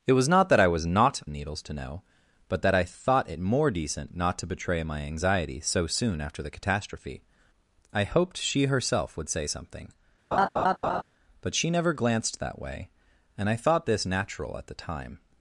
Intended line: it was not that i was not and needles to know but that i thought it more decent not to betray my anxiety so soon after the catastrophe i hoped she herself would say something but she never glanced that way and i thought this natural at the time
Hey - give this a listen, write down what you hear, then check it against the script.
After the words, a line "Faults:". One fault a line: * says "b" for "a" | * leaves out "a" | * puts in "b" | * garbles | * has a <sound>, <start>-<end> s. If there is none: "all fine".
it was not that i was not and needles to know but that i thought it more decent not to betray my anxiety so soon after the catastrophe i hoped she herself would say something but she never glanced that way and i thought this natural at the time
Faults:
* has a laugh, 10.3-11.0 s